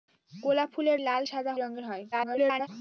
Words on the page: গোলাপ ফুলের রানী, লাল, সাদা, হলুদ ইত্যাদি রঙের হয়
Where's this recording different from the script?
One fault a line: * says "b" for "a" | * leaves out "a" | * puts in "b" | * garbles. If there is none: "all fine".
* leaves out "রানী"
* leaves out "হলুদ ইত্যাদি"
* garbles